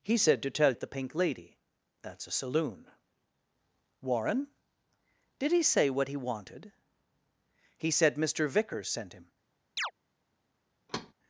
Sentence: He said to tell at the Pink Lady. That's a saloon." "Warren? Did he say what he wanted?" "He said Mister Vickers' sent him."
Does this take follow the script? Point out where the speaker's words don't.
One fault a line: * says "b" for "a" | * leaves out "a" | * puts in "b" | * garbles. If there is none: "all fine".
all fine